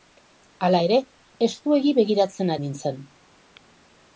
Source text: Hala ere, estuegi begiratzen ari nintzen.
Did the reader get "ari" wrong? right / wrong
wrong